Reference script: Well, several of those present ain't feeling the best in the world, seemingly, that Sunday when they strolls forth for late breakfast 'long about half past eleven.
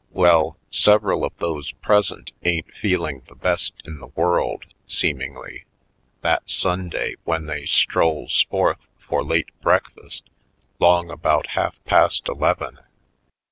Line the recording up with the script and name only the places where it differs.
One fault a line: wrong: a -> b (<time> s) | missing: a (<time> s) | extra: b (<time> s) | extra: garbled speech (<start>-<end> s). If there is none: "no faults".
no faults